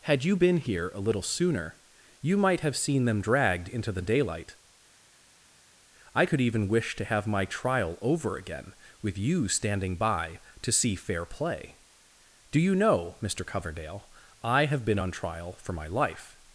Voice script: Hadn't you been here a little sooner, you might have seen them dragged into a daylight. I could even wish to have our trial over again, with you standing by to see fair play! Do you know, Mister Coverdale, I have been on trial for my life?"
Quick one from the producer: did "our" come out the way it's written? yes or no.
no